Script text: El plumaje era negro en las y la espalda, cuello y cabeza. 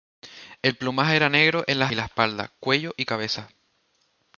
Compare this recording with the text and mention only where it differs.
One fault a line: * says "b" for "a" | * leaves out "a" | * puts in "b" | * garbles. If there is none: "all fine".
all fine